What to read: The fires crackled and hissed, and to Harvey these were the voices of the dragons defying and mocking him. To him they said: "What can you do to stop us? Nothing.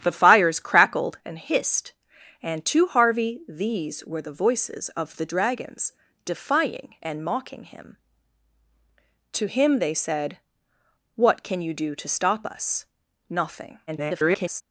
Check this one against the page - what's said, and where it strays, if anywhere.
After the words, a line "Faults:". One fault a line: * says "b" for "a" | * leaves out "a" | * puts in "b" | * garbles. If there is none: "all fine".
The fires crackled and hissed, and to Harvey these were the voices of the dragons defying and mocking him. To him they said: "What can you do to stop us? Nothing. [garbled]
Faults:
* garbles